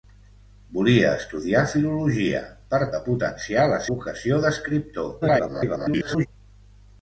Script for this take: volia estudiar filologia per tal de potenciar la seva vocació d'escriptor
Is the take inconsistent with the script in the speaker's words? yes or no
yes